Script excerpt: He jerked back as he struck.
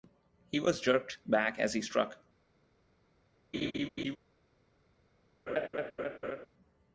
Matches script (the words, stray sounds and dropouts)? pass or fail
fail